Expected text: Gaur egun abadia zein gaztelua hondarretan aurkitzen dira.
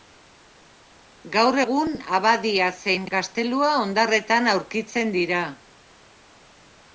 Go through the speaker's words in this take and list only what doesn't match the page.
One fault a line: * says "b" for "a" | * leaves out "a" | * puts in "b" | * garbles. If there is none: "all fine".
all fine